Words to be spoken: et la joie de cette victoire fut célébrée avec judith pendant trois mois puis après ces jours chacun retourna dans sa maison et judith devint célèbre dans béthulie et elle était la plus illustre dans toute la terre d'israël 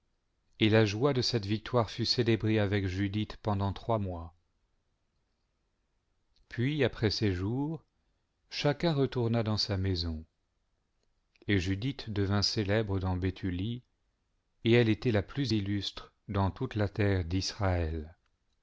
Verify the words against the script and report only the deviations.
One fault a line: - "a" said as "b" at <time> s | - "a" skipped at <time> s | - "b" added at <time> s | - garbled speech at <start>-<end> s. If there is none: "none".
none